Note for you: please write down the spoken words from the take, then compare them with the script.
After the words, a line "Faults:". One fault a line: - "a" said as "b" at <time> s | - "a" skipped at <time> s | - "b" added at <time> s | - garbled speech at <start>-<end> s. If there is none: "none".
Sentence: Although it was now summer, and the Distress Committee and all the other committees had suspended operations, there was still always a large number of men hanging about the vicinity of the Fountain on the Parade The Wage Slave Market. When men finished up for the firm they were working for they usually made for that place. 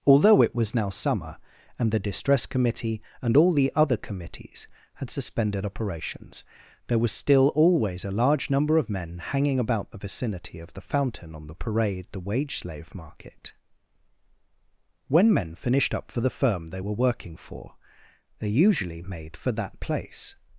Although it was now summer, and the Distress Committee and all the other committees had suspended operations, there was still always a large number of men hanging about the vicinity of the Fountain on the Parade The Wage Slave Market. When men finished up for the firm they were working for they usually made for that place.
Faults:
none